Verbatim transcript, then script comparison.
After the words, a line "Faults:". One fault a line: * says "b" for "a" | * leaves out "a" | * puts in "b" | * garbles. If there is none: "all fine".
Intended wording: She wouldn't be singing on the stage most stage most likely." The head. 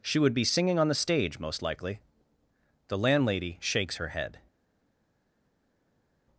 She would be singing on the stage most likely." The landlady shakes her head.
Faults:
* says "would" for "wouldn't"
* says "likely The landlady shakes her" for "stage most likely The"